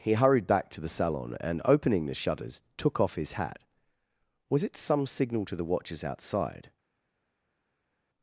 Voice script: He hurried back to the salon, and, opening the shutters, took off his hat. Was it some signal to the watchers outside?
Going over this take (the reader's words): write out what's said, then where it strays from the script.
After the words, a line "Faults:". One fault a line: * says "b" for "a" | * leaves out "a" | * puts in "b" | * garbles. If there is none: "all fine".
He hurried back to the salon, and, opening the shutters, took off his hat. Was it some signal to the watchers outside?
Faults:
all fine